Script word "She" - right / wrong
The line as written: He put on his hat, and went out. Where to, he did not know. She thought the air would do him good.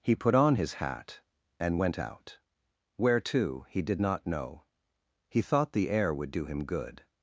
wrong